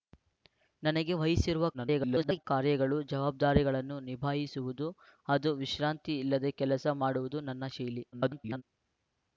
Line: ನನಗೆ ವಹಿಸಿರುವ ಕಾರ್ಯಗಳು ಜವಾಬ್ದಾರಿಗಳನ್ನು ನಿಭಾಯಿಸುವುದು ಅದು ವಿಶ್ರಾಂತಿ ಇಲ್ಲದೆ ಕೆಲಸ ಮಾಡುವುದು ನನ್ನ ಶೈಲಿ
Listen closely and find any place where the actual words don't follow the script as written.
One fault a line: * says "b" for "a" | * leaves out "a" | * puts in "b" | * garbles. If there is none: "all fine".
* garbles
* garbles